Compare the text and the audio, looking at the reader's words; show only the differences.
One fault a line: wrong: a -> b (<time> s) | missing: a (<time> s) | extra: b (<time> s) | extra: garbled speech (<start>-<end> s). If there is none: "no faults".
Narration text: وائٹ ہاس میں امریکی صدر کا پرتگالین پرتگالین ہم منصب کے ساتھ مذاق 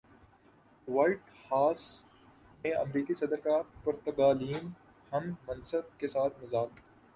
missing: پرتگالین (4.7 s)